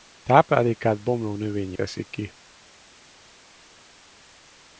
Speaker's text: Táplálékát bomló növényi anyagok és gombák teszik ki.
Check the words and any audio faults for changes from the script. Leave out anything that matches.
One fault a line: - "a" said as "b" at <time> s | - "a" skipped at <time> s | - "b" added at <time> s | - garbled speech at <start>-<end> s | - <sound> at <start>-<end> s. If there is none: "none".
- "anyagok és gombák" skipped at 1.8 s